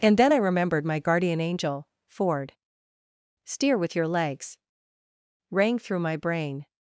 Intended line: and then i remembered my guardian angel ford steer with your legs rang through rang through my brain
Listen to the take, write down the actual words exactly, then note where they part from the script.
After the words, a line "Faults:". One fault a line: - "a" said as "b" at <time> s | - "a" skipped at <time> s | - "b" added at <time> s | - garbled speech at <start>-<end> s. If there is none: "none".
and then i remembered my guardian angel ford steer with your legs rang through my brain
Faults:
- "rang through" skipped at 6.0 s